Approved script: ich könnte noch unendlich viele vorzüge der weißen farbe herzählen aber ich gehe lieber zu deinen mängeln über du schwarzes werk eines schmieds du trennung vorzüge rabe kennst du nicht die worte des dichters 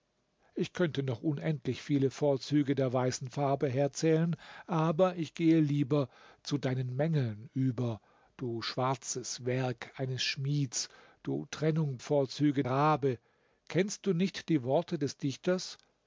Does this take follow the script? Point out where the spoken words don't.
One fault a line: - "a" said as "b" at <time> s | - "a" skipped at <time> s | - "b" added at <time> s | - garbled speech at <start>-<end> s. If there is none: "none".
none